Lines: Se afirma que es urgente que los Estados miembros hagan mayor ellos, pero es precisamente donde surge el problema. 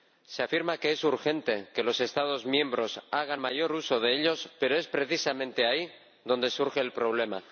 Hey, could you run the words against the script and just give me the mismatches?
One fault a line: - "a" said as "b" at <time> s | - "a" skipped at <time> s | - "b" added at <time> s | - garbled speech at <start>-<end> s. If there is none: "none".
- "uso de" added at 3.7 s
- "ahí" added at 5.7 s